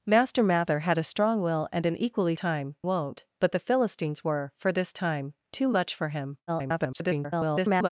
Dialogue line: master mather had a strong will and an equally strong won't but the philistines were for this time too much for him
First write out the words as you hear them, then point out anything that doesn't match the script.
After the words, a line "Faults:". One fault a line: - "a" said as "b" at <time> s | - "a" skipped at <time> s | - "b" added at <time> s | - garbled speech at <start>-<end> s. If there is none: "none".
master mather had a strong will and an equally time won't but the philistines were for this time too much for him [garbled]
Faults:
- "strong" said as "time" at 2.3 s
- garbled speech at 6.5-7.9 s